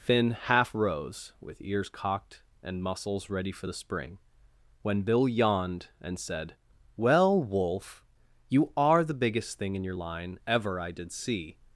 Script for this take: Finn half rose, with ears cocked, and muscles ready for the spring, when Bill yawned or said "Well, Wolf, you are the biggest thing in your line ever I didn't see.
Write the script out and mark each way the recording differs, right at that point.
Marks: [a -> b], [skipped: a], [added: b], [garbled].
Finn half rose, with ears cocked, and muscles ready for the spring, when Bill yawned [or -> and] said "Well, Wolf, you are the biggest thing in your line ever I [didn't -> did] see.